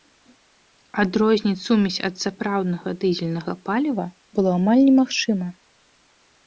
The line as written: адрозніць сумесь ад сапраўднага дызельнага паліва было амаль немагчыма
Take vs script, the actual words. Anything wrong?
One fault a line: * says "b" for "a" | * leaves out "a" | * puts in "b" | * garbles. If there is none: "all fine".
all fine